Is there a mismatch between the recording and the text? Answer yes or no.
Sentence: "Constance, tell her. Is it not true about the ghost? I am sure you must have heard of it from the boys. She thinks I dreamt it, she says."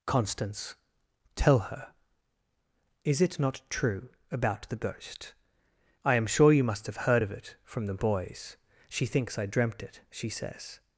no